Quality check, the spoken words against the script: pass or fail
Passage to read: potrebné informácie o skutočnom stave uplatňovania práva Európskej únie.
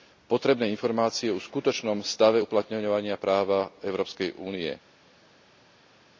pass